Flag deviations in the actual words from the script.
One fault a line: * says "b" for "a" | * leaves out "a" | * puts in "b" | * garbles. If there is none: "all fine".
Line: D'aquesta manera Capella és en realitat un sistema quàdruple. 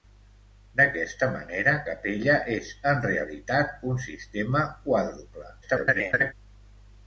* garbles